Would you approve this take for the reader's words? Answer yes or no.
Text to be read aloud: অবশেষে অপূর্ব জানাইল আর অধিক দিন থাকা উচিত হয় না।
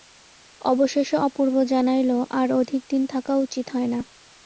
yes